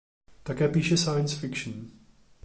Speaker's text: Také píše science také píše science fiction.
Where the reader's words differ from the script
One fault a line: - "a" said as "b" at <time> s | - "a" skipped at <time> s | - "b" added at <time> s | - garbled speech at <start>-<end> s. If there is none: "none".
- "také píše science" skipped at 1.4 s